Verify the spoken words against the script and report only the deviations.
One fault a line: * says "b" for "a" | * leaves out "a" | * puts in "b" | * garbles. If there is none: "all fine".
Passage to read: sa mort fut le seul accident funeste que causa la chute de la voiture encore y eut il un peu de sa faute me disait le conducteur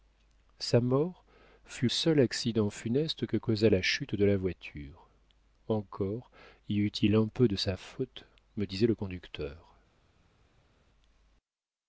* leaves out "le"